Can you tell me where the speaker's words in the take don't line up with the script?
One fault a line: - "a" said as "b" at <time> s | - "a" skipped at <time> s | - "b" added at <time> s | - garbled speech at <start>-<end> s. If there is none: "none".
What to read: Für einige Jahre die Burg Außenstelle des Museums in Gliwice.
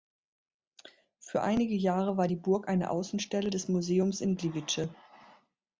- "war" added at 2.2 s
- "eine" added at 2.7 s